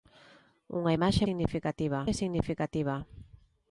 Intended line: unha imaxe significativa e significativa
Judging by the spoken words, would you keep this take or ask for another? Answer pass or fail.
pass